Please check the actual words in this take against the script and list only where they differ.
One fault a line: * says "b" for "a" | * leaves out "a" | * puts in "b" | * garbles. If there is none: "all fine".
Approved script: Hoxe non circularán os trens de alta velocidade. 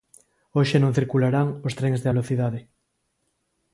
* leaves out "alta"